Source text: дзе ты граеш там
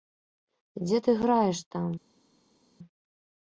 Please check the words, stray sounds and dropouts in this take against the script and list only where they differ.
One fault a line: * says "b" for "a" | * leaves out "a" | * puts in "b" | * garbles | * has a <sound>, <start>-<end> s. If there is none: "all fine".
all fine